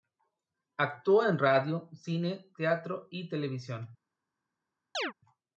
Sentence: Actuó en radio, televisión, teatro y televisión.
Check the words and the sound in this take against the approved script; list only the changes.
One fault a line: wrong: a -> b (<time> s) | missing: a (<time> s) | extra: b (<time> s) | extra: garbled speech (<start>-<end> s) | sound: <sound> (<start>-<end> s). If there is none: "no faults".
wrong: televisión -> cine (1.9 s)
sound: chirp (4.9-5.1 s)